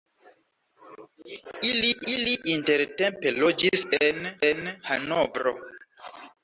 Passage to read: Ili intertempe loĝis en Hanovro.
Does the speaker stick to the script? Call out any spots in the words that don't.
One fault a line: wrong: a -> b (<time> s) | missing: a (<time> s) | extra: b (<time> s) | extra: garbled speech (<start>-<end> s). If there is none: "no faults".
extra: ili (2.1 s)
extra: en (4.4 s)